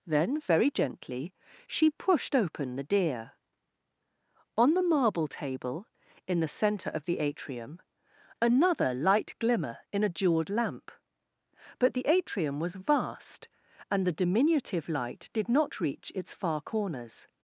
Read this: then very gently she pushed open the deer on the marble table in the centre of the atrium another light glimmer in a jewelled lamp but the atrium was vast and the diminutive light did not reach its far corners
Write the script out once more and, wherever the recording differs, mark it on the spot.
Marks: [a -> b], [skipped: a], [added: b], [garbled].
then very gently she pushed open the deer on the marble table in the centre of the atrium another light glimmer in a jewelled lamp but the atrium was vast and the diminutive light did not reach its far corners